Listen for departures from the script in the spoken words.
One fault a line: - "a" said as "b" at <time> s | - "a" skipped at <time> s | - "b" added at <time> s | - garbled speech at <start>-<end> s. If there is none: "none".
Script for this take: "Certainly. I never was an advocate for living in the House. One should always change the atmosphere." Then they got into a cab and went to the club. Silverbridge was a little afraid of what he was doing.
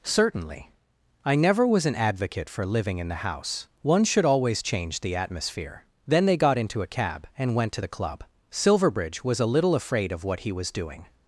none